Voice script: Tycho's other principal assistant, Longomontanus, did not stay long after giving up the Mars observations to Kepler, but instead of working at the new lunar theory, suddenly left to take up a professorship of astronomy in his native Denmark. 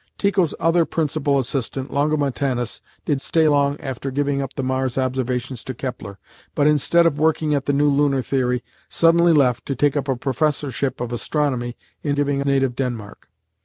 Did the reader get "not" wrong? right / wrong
wrong